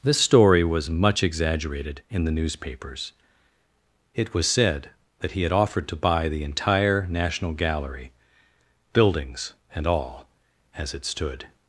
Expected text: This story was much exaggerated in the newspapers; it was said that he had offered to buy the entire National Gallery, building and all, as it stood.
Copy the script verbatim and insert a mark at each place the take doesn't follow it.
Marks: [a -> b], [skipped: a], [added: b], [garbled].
This story was much exaggerated in the newspapers; it was said that he had offered to buy the entire National Gallery, [building -> buildings] and all, as it stood.